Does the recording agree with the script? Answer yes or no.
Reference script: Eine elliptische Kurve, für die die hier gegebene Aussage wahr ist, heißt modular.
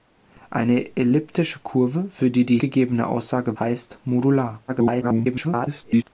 no